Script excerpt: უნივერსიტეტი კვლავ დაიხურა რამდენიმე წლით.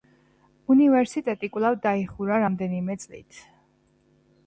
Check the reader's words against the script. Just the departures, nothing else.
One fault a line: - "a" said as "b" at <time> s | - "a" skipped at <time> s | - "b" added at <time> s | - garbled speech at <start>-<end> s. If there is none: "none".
none